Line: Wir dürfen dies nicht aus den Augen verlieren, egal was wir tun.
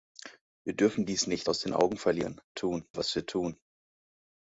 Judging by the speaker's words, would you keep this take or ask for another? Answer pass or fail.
fail